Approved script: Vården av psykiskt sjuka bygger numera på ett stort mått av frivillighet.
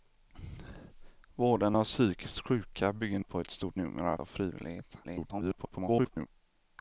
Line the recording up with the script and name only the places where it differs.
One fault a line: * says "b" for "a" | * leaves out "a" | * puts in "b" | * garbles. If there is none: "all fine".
* leaves out "numera"
* says "numera" for "mått"
* garbles